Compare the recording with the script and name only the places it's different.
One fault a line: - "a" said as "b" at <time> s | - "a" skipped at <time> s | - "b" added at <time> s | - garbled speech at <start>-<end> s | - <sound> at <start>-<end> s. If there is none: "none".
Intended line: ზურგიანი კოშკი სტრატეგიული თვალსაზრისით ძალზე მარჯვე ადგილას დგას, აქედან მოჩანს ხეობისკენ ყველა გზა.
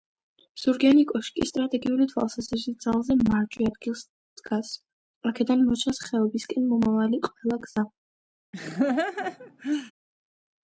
- "მომავალი" added at 6.8 s
- laugh at 8.5-9.9 s